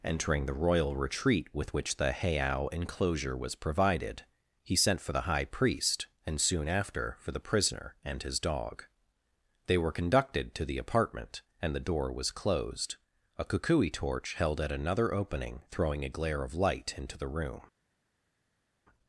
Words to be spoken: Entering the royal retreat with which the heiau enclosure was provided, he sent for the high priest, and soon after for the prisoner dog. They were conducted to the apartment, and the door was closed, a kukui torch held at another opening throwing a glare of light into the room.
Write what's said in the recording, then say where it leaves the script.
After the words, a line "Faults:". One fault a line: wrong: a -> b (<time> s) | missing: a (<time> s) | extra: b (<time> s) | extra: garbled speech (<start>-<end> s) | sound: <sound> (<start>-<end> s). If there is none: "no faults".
Entering the royal retreat with which the heiau enclosure was provided, he sent for the high priest, and soon after for the prisoner and his dog. They were conducted to the apartment, and the door was closed, a kukui torch held at another opening throwing a glare of light into the room.
Faults:
extra: and his (8.0 s)